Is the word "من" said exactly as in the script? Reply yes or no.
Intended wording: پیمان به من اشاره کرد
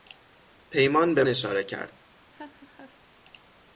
no